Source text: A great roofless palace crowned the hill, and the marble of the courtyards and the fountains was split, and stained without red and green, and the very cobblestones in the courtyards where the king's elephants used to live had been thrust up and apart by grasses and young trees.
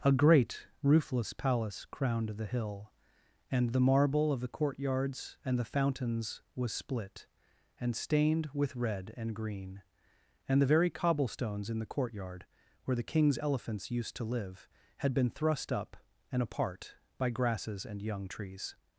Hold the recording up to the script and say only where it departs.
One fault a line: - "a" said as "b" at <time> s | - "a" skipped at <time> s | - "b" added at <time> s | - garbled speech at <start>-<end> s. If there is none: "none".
- "without" said as "with" at 8.5 s
- "courtyards" said as "courtyard" at 11.9 s